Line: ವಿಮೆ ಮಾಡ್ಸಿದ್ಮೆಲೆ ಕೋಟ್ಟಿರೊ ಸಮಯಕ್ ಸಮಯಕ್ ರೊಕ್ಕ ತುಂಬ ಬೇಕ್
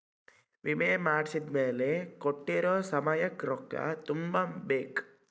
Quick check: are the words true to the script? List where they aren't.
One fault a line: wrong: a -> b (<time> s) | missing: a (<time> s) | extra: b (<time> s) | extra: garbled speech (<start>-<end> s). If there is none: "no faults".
missing: ಸಮಯಕ್ (3.5 s)